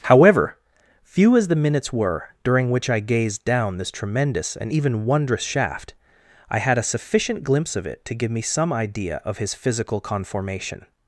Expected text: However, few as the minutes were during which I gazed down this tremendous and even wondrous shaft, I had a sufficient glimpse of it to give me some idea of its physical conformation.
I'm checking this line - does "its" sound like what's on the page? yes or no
no